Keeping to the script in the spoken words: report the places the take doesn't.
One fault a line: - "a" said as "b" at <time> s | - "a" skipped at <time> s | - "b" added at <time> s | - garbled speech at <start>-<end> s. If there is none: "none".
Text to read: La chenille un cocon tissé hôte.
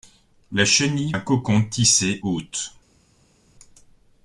none